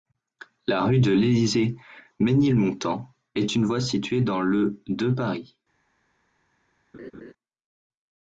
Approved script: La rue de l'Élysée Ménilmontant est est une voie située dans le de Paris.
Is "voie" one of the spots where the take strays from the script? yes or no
no